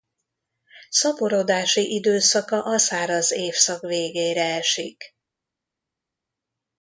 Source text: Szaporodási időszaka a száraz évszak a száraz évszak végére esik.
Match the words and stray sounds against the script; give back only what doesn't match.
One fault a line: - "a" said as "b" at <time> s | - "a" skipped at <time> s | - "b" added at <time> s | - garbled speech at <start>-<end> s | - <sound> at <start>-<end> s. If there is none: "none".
- "a száraz évszak" skipped at 3.8 s